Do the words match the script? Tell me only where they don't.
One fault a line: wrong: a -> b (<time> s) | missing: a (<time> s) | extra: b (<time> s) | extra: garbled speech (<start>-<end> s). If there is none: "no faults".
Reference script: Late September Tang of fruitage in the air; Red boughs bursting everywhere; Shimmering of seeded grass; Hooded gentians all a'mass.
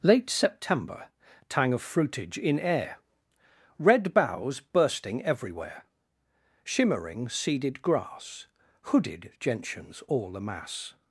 missing: the (2.6 s)
missing: of (7.3 s)